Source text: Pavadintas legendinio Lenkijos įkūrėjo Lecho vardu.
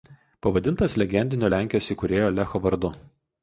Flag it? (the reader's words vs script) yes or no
no